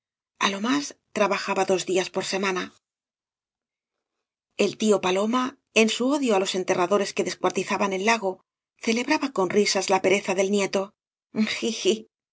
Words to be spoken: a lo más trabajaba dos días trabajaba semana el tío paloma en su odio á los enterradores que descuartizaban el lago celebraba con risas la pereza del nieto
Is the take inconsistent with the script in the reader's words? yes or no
yes